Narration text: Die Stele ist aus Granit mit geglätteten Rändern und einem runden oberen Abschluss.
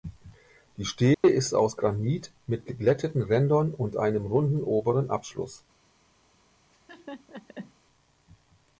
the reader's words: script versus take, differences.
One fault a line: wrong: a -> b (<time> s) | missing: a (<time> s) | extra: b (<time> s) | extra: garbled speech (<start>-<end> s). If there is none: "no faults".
no faults